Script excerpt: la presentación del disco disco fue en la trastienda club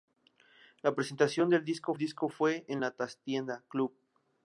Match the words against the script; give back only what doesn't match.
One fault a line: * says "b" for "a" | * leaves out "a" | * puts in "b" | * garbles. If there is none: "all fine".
all fine